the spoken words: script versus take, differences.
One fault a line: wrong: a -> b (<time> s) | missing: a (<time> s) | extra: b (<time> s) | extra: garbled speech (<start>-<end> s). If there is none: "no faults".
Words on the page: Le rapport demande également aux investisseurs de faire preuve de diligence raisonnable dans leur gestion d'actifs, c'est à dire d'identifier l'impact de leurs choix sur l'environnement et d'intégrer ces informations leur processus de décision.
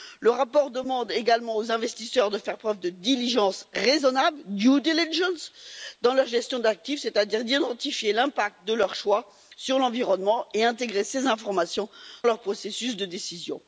no faults